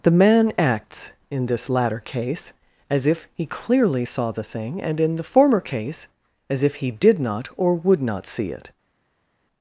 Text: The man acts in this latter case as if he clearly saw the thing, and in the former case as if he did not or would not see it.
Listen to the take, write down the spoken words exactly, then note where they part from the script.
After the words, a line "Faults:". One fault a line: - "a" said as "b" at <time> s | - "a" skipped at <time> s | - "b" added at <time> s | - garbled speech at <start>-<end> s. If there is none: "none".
The man acts in this latter case as if he clearly saw the thing, and in the former case as if he did not or would not see it.
Faults:
none